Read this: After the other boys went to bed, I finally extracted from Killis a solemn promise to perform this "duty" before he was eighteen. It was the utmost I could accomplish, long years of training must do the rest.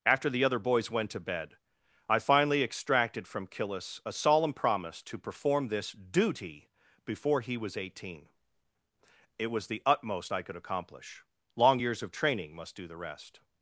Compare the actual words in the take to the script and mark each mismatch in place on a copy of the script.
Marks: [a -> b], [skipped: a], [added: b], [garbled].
After the other boys went to bed, I finally extracted from Killis a solemn promise to perform this "duty" before he was eighteen. It was the utmost I could accomplish, long years of training must do the rest.